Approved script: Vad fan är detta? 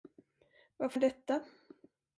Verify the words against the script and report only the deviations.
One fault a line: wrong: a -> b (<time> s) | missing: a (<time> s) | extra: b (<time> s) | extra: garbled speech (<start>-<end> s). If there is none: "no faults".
missing: fan (0.9 s)